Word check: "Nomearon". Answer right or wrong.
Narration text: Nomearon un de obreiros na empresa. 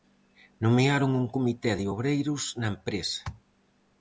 right